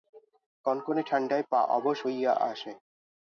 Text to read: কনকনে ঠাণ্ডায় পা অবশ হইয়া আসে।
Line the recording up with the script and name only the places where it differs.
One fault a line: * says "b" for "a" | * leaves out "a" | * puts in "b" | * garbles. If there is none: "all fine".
all fine